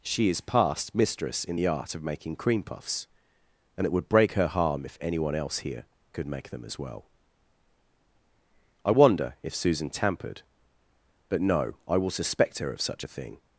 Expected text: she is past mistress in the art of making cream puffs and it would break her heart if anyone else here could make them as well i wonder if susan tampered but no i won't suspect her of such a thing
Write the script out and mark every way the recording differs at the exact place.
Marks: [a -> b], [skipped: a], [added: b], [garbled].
she is past mistress in the art of making cream puffs and it would break her [heart -> harm] if anyone else here could make them as well i wonder if susan tampered but no i [won't -> will] suspect her of such a thing